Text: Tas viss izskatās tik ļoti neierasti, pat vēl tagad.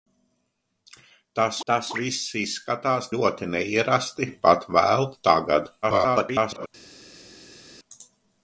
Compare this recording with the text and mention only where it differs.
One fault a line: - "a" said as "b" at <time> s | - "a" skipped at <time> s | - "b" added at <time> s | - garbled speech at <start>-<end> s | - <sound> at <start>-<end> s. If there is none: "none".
- "tas" added at 1.7 s
- "tik" skipped at 3.1 s
- garbled speech at 5.8-6.7 s